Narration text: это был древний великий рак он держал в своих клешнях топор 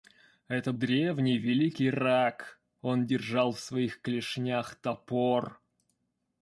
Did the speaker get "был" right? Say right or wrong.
wrong